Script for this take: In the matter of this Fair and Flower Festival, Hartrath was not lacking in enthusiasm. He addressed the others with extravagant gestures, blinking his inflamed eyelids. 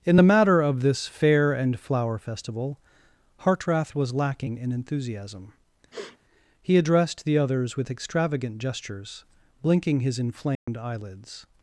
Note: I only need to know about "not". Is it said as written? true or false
false